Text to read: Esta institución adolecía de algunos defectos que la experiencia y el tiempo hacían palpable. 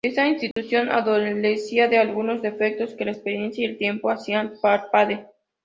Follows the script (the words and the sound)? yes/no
no